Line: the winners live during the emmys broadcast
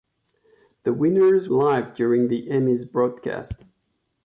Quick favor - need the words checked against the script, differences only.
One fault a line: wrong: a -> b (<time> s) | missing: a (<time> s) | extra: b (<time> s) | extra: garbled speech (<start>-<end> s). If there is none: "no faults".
no faults